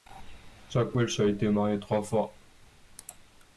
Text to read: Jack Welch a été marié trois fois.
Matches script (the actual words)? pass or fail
pass